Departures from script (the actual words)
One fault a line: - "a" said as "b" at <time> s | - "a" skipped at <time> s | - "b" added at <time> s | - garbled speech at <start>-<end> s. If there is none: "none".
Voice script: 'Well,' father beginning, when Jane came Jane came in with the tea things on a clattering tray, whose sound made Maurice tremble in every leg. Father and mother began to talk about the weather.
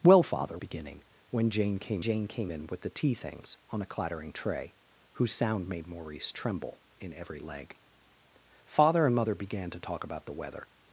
none